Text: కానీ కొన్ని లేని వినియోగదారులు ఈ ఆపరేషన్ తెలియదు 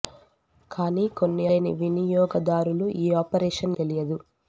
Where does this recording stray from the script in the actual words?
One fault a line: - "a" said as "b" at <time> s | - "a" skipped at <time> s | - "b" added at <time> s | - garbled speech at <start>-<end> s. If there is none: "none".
none